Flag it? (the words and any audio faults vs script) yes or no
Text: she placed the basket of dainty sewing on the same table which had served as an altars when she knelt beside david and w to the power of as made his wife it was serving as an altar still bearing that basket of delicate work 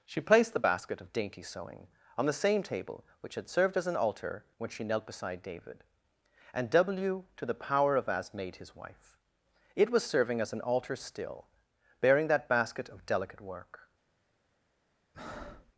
yes